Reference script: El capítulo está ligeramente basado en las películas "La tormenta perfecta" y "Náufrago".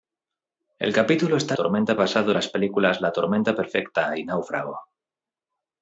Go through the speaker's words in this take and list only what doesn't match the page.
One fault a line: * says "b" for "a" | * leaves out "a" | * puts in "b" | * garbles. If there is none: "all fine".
* says "tormenta" for "ligeramente"